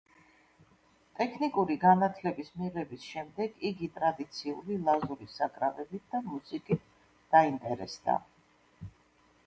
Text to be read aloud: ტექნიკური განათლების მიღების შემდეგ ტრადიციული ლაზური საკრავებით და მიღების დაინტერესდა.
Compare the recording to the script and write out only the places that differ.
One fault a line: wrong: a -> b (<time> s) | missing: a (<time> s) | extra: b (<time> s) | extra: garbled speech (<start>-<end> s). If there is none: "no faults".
extra: იგი (3.7 s)
wrong: მიღების -> მუსიკით (6.3 s)